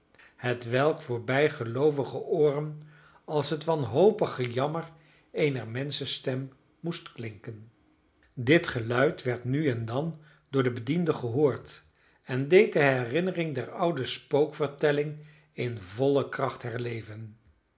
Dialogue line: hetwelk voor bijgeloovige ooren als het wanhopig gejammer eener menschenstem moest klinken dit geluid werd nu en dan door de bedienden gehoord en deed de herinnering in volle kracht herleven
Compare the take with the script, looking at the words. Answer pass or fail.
fail